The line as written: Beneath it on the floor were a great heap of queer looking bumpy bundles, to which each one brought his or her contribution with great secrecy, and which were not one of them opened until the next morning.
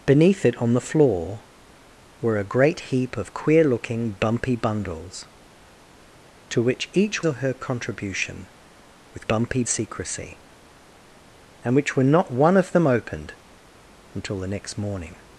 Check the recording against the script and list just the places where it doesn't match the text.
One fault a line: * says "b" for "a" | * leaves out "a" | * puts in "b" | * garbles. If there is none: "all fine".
* leaves out "one brought his"
* says "bumpy" for "great"